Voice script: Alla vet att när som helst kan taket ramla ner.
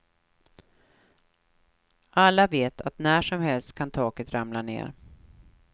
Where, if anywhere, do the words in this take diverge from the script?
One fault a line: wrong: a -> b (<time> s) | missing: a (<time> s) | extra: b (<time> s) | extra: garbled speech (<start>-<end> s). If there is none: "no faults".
no faults